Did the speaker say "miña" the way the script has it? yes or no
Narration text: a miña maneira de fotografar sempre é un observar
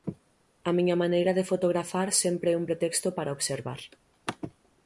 yes